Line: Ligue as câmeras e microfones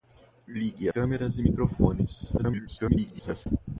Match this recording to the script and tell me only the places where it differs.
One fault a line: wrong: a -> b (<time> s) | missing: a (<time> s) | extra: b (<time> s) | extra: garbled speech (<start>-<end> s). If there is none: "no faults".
missing: as (0.9 s)
extra: garbled speech (2.4-3.5 s)